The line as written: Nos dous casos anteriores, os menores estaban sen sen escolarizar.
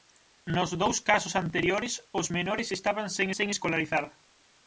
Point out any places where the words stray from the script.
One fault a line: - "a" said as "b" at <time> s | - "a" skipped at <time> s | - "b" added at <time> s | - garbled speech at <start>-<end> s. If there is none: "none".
none